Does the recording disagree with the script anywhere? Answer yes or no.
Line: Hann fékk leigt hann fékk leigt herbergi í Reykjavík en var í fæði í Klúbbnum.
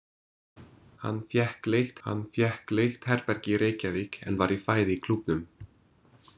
no